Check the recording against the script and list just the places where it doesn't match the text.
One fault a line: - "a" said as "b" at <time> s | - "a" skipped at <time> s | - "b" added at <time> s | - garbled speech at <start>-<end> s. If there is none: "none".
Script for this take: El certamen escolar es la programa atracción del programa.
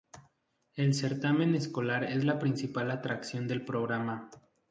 - "programa" said as "principal" at 2.4 s